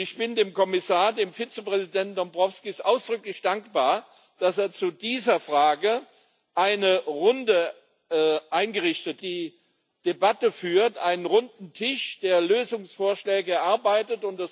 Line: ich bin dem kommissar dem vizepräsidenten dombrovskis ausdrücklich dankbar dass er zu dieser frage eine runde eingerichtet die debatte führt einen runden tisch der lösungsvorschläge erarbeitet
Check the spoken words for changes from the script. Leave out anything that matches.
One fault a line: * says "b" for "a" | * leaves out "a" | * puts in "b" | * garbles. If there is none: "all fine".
all fine